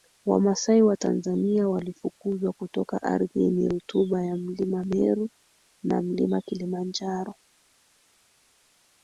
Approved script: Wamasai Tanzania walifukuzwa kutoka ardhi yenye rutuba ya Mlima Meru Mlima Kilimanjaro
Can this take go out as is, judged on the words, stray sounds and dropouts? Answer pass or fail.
fail